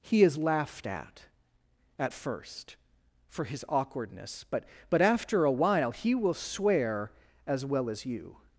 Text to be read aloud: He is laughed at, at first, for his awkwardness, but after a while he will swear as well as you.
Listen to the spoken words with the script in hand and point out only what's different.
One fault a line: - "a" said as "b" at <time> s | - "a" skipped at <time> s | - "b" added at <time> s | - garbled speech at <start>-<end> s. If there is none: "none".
- "but" added at 4.9 s